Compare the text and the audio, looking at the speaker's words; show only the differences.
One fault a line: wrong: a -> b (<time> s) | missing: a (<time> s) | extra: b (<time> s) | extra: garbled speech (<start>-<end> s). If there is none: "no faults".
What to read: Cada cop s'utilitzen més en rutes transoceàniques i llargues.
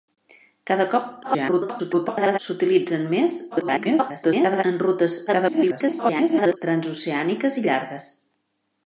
extra: garbled speech (1.2-2.4 s)
extra: garbled speech (3.5-4.6 s)
extra: garbled speech (5.3-6.6 s)